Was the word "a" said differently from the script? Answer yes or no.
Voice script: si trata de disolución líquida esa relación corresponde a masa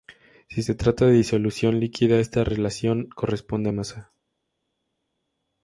no